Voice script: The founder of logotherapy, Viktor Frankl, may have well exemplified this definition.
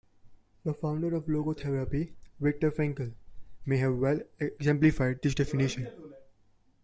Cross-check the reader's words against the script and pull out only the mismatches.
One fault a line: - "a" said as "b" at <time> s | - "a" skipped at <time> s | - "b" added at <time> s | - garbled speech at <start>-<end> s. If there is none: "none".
none